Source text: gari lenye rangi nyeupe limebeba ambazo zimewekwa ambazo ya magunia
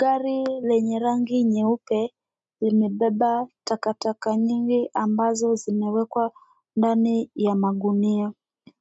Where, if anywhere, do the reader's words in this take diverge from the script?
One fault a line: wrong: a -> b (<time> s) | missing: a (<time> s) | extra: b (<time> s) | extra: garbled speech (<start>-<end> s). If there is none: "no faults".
extra: takataka nyingi (3.6 s)
wrong: ambazo -> ndani (6.8 s)